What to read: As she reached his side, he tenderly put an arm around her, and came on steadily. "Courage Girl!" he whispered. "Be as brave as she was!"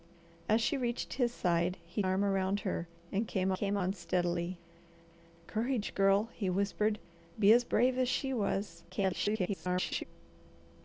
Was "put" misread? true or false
true